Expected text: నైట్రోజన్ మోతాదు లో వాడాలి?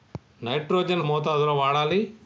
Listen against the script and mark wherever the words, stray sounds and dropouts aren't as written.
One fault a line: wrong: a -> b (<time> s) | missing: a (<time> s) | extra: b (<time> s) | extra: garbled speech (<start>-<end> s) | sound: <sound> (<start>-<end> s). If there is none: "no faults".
no faults